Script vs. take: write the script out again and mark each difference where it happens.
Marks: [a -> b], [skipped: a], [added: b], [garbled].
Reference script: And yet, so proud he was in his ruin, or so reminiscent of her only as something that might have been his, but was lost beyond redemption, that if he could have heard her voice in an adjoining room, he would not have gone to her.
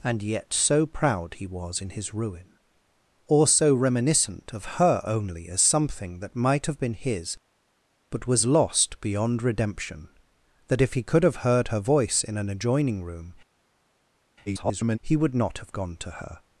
And yet, so proud he was in his ruin, or so reminiscent of her only as something that might have been his, but was lost beyond redemption, that if he could have heard her voice in an adjoining room, [garbled] he would not have gone to her.